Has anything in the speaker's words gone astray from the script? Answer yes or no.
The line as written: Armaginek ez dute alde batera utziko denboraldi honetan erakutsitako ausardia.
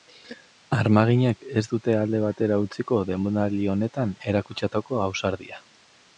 no